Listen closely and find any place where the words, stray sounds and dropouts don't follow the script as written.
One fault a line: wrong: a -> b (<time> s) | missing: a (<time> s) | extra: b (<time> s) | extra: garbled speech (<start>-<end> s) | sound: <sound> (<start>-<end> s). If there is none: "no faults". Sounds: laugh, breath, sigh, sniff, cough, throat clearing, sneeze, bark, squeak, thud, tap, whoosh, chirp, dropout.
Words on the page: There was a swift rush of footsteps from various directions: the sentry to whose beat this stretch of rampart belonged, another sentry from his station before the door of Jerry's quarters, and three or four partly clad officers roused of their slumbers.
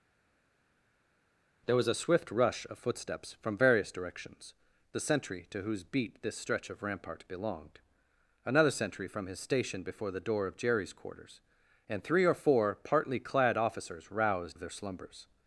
no faults